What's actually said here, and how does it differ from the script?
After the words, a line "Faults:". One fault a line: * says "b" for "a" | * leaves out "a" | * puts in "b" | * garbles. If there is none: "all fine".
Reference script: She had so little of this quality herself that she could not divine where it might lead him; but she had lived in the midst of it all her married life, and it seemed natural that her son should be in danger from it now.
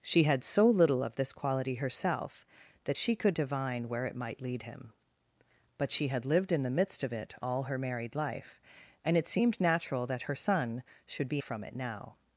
She had so little of this quality herself that she could divine where it might lead him; but she had lived in the midst of it all her married life, and it seemed natural that her son should be from it now.
Faults:
* leaves out "not"
* leaves out "in danger"